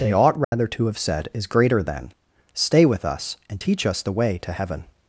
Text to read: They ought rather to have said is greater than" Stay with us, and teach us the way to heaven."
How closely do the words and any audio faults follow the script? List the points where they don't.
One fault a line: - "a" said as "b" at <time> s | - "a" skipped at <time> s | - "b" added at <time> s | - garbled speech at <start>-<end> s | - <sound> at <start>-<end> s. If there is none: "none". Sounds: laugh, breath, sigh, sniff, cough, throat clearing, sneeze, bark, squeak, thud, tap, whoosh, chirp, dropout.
- dropout at 0.4-0.5 s